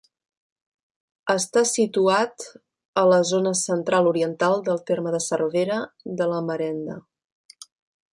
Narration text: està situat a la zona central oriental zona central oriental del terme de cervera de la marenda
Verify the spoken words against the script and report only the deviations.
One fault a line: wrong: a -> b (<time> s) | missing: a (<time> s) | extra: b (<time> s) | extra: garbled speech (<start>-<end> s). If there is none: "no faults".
missing: zona central oriental (4.6 s)